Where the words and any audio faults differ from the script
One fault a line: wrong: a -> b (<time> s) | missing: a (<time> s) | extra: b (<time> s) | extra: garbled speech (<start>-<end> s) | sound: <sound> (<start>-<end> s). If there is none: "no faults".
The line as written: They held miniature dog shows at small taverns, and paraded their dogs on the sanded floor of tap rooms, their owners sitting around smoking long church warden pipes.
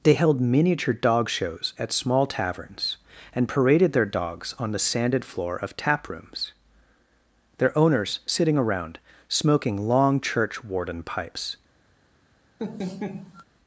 sound: laugh (12.6-13.4 s)